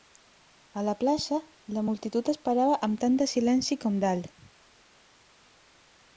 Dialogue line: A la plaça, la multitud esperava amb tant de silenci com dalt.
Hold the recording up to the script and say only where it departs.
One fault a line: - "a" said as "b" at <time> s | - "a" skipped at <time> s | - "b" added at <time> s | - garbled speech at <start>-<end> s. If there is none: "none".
none